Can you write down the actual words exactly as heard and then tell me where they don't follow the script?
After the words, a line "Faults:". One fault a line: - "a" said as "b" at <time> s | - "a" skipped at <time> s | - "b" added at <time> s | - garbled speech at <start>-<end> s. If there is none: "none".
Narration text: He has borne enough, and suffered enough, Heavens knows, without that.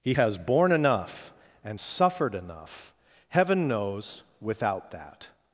He has borne enough, and suffered enough, Heaven knows, without that.
Faults:
- "Heavens" said as "Heaven" at 3.3 s